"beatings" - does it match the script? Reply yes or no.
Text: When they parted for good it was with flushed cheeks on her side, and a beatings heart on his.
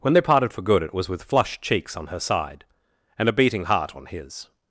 no